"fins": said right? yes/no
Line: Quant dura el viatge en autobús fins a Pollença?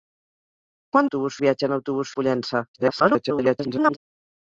no